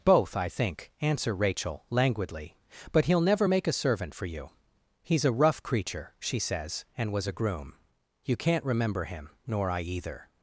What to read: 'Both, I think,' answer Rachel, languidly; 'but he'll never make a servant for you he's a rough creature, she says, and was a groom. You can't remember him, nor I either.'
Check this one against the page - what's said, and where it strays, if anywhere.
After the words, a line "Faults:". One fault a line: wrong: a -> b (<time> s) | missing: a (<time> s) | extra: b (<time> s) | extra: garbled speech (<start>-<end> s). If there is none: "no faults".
'Both, I think,' answer Rachel, languidly; 'but he'll never make a servant for you he's a rough creature, she says, and was a groom. You can't remember him, nor I either.'
Faults:
no faults